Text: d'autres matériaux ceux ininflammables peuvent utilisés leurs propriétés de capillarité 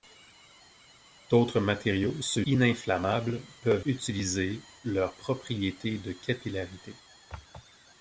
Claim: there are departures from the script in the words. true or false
false